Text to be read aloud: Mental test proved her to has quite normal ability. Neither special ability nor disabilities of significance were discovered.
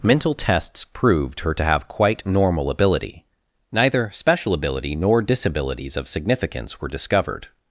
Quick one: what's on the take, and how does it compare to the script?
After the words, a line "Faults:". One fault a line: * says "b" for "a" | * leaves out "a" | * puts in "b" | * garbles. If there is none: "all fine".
Mental tests proved her to have quite normal ability. Neither special ability nor disabilities of significance were discovered.
Faults:
* says "tests" for "test"
* says "have" for "has"